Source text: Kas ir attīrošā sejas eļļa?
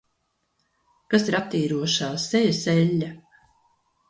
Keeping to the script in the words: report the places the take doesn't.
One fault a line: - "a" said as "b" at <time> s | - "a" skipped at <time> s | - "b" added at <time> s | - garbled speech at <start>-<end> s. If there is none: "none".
none